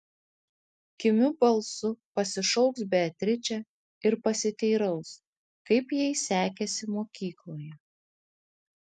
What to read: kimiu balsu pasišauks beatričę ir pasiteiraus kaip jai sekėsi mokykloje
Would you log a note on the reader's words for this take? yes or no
no